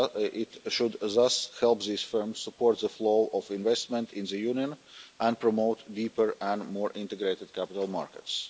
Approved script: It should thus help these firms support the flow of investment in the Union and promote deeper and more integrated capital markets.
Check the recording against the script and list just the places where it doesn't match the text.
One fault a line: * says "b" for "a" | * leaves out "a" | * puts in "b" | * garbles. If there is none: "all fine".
all fine